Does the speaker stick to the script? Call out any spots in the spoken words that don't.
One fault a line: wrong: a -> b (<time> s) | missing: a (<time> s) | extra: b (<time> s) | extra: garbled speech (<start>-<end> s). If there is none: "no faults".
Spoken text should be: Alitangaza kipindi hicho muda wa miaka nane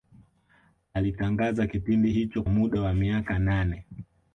no faults